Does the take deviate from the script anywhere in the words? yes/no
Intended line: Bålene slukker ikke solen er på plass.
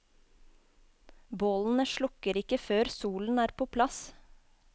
yes